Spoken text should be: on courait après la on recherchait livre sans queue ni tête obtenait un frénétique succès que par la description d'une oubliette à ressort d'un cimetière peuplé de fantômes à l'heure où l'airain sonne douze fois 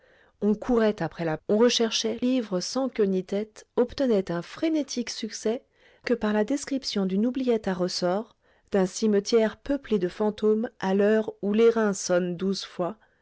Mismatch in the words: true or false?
false